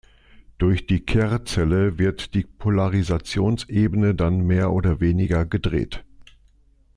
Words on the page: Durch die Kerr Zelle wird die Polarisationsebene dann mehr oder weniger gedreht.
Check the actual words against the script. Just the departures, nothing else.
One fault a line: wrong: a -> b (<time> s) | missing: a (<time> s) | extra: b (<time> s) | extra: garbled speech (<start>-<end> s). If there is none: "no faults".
no faults